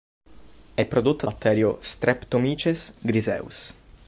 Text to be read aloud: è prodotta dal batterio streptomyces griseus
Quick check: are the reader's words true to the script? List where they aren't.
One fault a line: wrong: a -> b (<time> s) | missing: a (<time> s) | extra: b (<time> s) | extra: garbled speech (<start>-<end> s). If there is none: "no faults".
missing: dal (1.3 s)